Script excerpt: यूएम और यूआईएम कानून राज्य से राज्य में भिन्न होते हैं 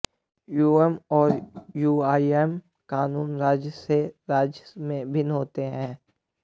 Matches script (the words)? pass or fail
pass